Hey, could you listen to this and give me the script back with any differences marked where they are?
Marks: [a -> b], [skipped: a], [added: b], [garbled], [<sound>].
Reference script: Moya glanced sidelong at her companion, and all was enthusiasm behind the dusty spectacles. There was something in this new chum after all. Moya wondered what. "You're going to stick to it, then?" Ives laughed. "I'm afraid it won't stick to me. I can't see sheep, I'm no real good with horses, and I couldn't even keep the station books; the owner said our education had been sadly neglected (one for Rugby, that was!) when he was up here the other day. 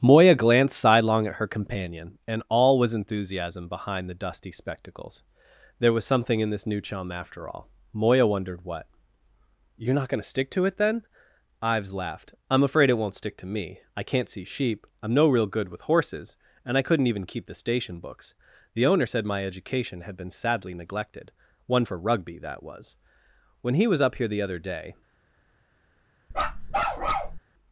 Moya glanced sidelong at her companion, and all was enthusiasm behind the dusty spectacles. There was something in this new chum after all. Moya wondered what. "You're [added: not] going to stick to it, then?" Ives laughed. "I'm afraid it won't stick to me. I can't see sheep, I'm no real good with horses, and I couldn't even keep the station books; the owner said [our -> my] education had been sadly neglected (one for Rugby, that was!) when he was up here the other day. [bark]